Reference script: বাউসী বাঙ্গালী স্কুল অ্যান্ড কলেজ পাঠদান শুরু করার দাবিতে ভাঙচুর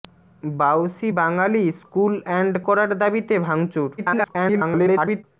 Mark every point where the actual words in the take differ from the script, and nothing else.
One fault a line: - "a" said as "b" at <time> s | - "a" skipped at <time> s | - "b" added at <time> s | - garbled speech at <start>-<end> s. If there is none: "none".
- "কলেজ পাঠদান শুরু" skipped at 2.5 s
- garbled speech at 4.0-5.2 s